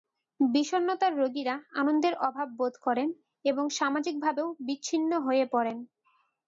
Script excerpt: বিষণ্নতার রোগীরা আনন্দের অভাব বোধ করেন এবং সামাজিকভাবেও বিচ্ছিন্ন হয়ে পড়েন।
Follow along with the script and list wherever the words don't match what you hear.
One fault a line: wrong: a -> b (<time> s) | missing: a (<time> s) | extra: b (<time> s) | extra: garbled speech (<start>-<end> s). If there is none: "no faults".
no faults